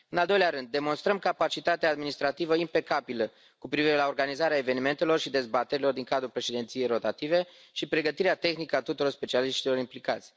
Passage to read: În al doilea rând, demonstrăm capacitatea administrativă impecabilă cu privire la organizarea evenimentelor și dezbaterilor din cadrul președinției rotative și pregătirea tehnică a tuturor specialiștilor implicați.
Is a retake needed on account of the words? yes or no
no